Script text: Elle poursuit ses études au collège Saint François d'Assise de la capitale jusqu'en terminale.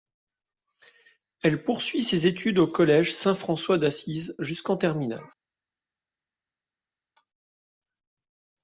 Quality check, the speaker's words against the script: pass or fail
fail